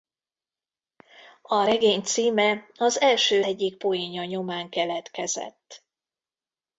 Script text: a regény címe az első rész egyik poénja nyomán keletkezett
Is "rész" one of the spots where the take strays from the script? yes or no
yes